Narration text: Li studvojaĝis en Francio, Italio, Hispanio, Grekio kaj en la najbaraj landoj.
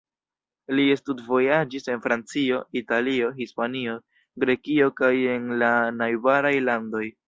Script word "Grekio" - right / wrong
right